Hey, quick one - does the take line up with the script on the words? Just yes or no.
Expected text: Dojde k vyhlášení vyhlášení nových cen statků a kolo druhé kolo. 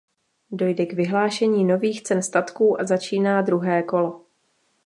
no